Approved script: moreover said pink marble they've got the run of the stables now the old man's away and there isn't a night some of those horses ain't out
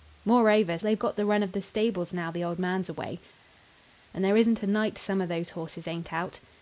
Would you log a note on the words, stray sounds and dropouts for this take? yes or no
yes